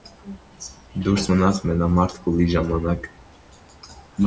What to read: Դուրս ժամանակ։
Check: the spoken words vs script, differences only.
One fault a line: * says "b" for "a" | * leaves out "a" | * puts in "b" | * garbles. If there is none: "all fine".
* puts in "մնաց մենամարտ փուլի"